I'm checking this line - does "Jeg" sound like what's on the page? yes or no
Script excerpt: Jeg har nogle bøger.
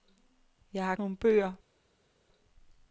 yes